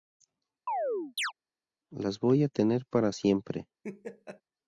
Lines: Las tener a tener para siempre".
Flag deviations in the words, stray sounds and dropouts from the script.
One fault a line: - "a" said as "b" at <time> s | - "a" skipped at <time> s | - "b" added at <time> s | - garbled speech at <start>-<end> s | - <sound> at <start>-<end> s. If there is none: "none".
- chirp at 0.7-1.3 s
- "tener" said as "voy" at 2.2 s
- laugh at 3.8-4.4 s